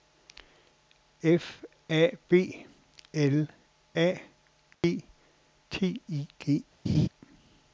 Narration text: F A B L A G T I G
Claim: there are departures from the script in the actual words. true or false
false